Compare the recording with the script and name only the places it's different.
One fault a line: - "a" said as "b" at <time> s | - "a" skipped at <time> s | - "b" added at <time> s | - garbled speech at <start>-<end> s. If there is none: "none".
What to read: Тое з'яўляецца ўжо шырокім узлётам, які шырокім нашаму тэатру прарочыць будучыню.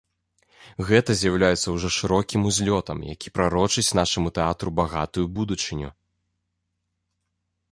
- "Тое" said as "Гэта" at 0.9 s
- "шырокім" said as "прарочыць" at 3.4 s
- "прарочыць" said as "багатую" at 4.8 s